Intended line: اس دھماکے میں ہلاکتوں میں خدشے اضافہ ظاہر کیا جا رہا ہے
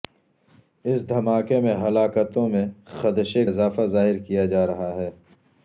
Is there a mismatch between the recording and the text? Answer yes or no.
no